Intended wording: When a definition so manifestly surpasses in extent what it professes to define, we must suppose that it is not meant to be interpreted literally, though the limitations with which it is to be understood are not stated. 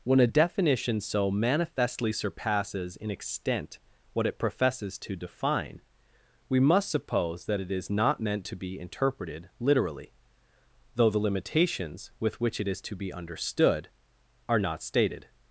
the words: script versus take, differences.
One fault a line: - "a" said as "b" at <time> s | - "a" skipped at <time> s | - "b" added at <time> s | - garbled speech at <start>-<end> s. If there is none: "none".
none